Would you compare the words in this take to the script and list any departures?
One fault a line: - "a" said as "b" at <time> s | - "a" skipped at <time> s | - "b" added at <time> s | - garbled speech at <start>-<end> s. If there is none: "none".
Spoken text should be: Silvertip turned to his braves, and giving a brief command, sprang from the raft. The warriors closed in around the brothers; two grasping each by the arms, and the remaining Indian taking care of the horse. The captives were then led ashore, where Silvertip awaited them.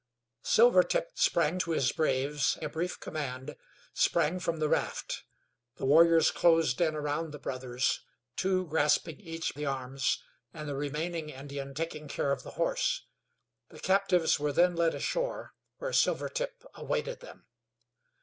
- "turned" said as "sprang" at 1.1 s
- "and giving" skipped at 2.6 s
- "by" skipped at 9.5 s